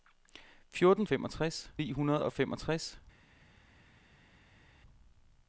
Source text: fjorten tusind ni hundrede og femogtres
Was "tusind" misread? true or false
true